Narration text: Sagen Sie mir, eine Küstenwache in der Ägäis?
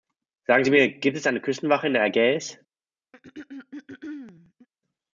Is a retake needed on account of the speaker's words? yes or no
yes